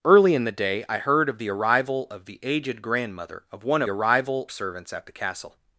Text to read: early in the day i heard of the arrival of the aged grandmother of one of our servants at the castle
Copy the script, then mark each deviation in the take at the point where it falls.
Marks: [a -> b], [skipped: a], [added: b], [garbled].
early in the day i heard of the arrival of the aged grandmother of one of [our -> arrival] servants at the castle